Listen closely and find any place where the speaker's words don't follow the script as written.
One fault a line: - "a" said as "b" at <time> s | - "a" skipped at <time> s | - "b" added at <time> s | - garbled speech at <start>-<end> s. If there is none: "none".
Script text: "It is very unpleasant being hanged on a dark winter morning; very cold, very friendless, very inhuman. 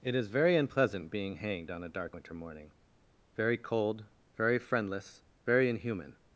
none